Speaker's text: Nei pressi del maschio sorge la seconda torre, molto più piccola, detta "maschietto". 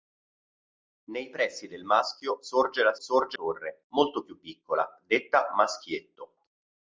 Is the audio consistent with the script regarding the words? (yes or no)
no